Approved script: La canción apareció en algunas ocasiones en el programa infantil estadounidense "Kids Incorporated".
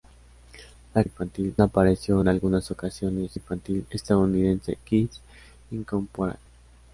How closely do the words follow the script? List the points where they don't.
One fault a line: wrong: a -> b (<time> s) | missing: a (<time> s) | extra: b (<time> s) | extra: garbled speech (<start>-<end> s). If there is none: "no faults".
wrong: canción -> infantil (1.0 s)
missing: en el programa (3.4 s)